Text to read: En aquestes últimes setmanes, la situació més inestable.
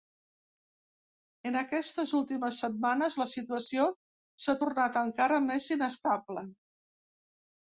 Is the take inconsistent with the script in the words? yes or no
yes